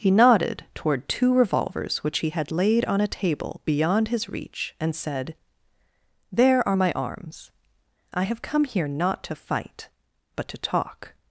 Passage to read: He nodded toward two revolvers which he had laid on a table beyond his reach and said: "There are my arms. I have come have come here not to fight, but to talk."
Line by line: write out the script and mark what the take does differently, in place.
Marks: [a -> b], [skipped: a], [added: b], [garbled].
He nodded toward two revolvers which he had laid on a table beyond his reach and said: "There are my arms. I have come [skipped: have come] here not to fight, but to talk."